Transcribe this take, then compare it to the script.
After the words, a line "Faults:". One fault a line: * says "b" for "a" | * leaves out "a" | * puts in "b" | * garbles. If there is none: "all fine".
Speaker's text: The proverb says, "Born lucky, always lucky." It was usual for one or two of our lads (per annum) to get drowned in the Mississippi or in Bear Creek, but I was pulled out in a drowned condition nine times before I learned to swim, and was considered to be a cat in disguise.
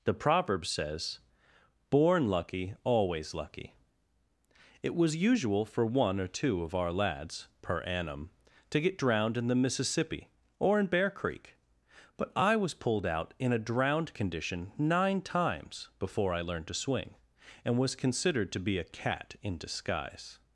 The proverb says, "Born lucky, always lucky." It was usual for one or two of our lads (per annum) to get drowned in the Mississippi or in Bear Creek, but I was pulled out in a drowned condition nine times before I learned to swing, and was considered to be a cat in disguise.
Faults:
* says "swing" for "swim"